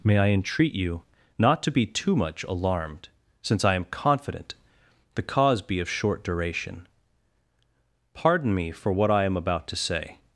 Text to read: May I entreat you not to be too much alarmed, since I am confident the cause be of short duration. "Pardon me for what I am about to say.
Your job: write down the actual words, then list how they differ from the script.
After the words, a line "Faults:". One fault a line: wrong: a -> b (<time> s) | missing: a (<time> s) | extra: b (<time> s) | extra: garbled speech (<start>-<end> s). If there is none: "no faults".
May I entreat you not to be too much alarmed, since I am confident the cause be of short duration. "Pardon me for what I am about to say.
Faults:
no faults